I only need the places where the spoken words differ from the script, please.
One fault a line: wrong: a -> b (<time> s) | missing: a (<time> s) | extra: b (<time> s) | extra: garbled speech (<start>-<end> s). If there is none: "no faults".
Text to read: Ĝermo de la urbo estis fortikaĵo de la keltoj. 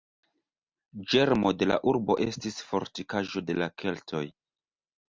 no faults